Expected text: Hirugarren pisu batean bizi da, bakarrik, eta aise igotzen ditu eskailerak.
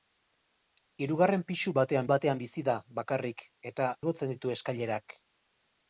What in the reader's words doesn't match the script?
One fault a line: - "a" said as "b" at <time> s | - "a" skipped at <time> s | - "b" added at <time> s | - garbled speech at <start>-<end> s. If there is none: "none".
- "batean" added at 2.1 s
- "aise" skipped at 3.9 s